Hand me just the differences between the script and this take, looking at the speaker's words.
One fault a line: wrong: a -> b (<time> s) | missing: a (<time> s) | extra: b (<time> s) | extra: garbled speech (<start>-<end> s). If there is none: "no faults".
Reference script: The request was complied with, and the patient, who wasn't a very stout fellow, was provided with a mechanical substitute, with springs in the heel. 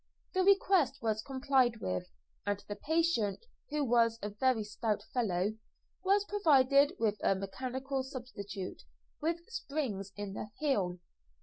wrong: wasn't -> was (3.8 s)